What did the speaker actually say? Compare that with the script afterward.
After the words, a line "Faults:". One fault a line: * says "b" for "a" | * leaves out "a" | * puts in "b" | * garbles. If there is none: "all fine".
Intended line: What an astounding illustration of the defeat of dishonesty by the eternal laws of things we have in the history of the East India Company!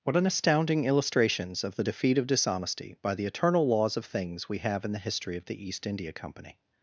What an astounding illustrations of the defeat of dishonesty by the eternal laws of things we have in the history of the East India Company!
Faults:
* says "illustrations" for "illustration"